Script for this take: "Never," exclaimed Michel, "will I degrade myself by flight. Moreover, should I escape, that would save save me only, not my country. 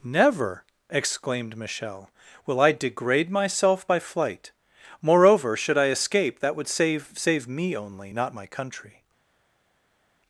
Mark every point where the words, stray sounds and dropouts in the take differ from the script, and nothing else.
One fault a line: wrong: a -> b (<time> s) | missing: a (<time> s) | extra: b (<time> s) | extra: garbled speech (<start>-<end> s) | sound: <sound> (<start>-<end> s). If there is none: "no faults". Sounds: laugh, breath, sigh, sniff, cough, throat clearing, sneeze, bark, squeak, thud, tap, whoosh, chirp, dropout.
no faults